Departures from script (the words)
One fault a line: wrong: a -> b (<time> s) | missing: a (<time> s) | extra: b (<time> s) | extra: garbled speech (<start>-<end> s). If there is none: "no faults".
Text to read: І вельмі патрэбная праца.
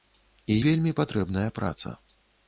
no faults